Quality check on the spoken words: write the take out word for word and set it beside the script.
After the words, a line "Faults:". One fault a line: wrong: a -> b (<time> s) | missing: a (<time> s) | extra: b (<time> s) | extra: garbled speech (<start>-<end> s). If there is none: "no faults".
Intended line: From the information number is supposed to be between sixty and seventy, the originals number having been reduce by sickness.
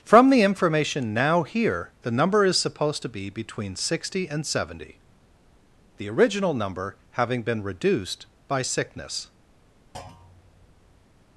From the information now here, the number is supposed to be between sixty and seventy, the original number having been reduced by sickness.
Faults:
extra: now here the (1.1 s)
wrong: originals -> original (6.1 s)
wrong: reduce -> reduced (7.6 s)